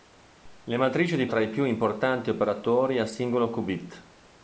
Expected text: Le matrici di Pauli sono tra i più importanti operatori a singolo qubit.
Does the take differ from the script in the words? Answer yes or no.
yes